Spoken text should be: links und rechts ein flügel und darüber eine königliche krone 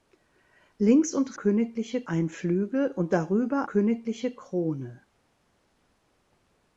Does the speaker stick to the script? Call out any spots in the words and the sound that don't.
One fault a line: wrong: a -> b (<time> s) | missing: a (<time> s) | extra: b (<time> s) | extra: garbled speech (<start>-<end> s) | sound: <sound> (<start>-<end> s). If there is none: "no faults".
wrong: rechts -> königliche (1.3 s)
missing: eine (3.7 s)